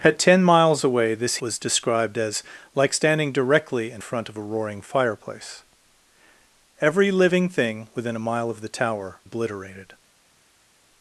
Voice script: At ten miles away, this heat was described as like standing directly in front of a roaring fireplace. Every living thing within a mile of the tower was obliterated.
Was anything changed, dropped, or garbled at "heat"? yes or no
yes